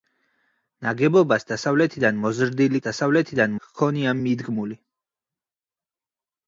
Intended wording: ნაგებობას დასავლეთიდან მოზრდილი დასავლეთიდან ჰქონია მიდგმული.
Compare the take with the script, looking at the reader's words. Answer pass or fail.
pass